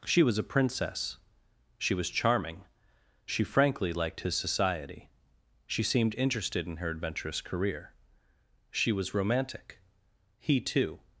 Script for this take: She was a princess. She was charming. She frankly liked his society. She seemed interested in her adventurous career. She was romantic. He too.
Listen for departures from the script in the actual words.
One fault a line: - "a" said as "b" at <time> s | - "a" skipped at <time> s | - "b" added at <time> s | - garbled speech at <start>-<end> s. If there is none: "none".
none